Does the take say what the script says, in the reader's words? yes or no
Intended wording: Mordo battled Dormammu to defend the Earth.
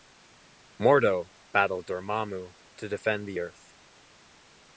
yes